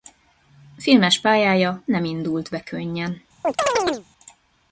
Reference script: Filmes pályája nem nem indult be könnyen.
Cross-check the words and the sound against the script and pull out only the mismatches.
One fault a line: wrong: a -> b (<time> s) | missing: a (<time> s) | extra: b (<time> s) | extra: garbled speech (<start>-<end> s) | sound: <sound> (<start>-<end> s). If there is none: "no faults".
missing: nem (2.0 s)
sound: chirp (3.4-4.1 s)